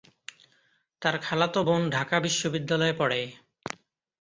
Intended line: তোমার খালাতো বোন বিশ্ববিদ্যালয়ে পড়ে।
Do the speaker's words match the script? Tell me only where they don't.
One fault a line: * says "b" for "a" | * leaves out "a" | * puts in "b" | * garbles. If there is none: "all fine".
* says "তার" for "তোমার"
* puts in "ঢাকা"